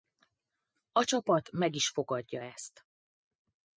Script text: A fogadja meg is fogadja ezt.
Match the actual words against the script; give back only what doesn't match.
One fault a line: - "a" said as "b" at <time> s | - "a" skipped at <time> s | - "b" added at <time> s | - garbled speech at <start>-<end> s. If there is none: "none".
- "fogadja" said as "csapat" at 1.0 s